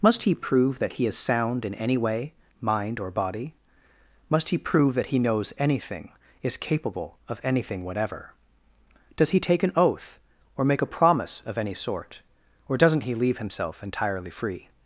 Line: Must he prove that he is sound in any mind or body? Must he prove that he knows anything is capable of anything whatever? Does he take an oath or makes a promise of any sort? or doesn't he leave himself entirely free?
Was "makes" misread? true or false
true